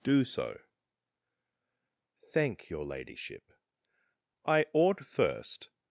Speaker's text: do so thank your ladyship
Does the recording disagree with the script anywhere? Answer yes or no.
yes